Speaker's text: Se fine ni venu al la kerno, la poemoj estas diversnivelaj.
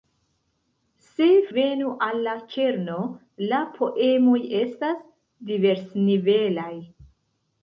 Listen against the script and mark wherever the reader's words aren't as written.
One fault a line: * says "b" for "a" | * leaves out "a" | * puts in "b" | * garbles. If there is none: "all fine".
* leaves out "fine ni"